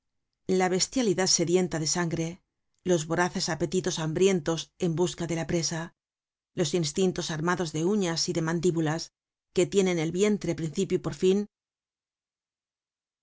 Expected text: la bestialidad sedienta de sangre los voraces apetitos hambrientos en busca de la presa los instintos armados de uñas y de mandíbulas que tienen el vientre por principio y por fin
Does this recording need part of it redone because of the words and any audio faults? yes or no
yes